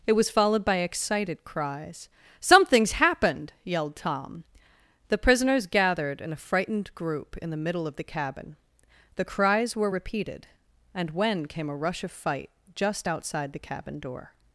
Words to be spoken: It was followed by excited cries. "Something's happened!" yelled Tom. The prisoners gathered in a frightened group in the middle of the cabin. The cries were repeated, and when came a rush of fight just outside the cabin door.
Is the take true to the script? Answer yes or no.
yes